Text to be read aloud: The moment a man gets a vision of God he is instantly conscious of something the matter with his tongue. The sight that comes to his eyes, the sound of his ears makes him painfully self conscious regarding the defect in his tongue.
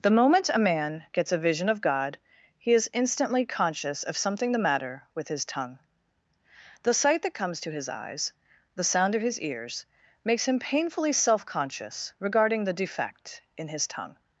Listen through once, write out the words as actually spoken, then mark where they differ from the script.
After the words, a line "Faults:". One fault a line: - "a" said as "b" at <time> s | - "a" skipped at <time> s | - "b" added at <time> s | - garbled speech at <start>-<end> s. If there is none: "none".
The moment a man gets a vision of God he is instantly conscious of something the matter with his tongue. The sight that comes to his eyes, the sound of his ears makes him painfully self conscious regarding the defect in his tongue.
Faults:
none